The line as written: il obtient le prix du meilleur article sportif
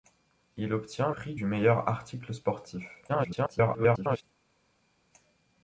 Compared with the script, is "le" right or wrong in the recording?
wrong